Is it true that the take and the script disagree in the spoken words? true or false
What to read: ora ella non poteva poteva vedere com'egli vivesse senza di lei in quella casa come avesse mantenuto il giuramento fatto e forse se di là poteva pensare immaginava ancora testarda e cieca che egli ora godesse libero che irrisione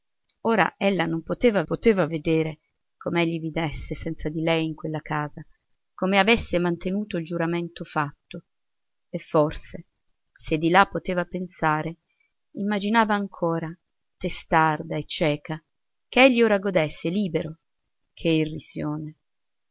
false